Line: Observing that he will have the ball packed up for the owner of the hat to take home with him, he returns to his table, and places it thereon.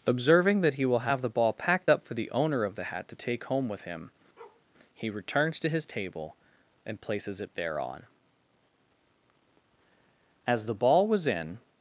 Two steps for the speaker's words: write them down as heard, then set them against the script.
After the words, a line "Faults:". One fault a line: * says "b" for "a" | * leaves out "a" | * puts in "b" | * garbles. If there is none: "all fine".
Observing that he will have the ball packed up for the owner of the hat to take home with him, he returns to his table, and places it thereon. As the ball was in
Faults:
* puts in "As the ball was in"